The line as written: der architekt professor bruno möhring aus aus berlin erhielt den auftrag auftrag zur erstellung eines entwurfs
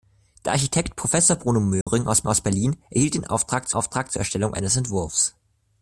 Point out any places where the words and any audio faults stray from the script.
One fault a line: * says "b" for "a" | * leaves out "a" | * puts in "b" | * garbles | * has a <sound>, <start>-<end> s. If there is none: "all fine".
* has a dropout, 1.8-1.9 s